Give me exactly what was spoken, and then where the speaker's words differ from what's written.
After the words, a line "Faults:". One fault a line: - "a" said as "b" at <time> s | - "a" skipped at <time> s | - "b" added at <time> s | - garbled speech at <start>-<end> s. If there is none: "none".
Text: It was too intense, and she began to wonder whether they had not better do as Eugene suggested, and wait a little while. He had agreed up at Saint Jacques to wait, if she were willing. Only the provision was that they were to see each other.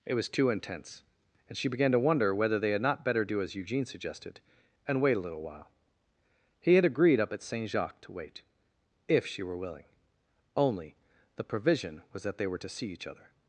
It was too intense, and she began to wonder whether they had not better do as Eugene suggested, and wait a little while. He had agreed up at Saint Jacques to wait, if she were willing. Only the provision was that they were to see each other.
Faults:
none